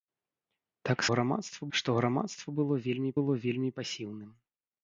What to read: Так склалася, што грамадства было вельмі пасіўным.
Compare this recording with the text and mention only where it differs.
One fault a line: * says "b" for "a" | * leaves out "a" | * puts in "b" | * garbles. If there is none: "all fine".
* says "грамадства" for "склалася"
* puts in "было вельмі"